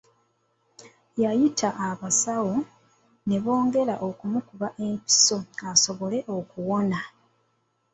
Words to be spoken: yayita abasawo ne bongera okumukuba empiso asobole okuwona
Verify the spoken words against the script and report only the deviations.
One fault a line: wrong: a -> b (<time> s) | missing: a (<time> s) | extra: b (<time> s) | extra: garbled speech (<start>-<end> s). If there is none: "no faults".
no faults